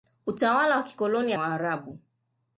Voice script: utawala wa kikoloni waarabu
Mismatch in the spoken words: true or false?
false